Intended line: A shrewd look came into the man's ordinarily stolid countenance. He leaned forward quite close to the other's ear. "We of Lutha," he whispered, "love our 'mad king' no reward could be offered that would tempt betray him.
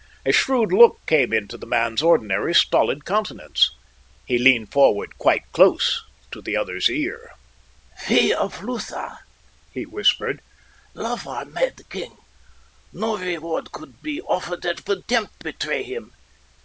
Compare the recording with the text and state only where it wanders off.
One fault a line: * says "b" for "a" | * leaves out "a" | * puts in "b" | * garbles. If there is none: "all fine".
all fine